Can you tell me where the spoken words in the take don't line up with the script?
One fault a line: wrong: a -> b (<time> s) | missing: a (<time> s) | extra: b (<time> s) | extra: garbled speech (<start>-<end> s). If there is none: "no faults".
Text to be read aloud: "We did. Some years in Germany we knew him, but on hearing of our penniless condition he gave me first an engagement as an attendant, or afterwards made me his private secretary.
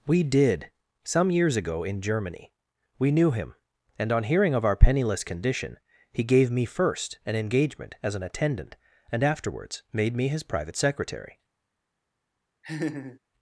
extra: ago (1.6 s)
wrong: but -> and (4.0 s)
wrong: or -> and (9.1 s)